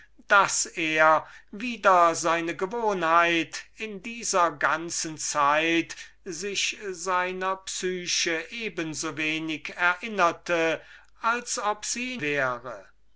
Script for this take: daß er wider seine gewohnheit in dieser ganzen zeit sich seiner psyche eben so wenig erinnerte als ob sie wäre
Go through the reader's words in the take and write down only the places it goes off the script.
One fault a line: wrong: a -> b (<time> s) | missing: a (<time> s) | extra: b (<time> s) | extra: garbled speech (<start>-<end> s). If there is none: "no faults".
no faults